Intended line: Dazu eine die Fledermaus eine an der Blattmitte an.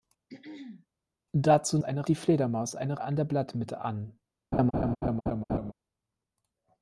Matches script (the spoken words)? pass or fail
pass